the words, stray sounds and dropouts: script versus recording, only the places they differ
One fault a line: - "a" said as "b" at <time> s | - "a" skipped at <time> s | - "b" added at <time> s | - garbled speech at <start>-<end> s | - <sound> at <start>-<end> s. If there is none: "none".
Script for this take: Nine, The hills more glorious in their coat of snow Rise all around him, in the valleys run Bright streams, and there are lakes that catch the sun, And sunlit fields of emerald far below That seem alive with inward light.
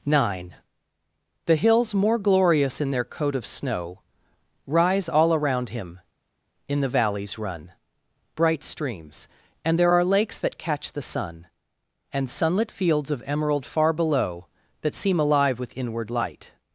none